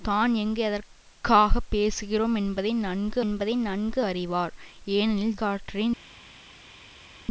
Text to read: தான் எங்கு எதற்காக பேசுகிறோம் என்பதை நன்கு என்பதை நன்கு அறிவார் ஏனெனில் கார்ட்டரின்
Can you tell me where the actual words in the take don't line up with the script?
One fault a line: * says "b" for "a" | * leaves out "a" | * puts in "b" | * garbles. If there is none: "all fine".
all fine